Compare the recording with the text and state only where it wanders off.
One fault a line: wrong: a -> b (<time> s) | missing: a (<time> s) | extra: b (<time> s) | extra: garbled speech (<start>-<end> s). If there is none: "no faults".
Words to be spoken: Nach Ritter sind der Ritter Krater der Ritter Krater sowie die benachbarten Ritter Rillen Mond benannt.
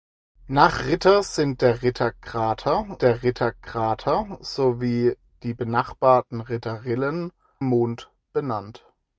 no faults